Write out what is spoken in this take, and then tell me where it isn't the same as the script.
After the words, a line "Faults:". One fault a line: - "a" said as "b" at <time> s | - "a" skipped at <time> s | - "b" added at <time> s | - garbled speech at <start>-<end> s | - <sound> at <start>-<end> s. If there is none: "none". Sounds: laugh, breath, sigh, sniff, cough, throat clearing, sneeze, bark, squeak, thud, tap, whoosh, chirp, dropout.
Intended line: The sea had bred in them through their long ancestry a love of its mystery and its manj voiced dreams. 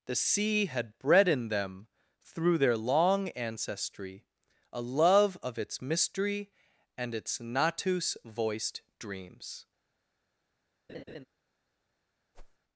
The sea had bred in them through their long ancestry a love of its mystery and its natus voiced dreams.
Faults:
- "manj" said as "natus" at 7.4 s
- laugh at 10.9-11.3 s
- whoosh at 12.3-12.6 s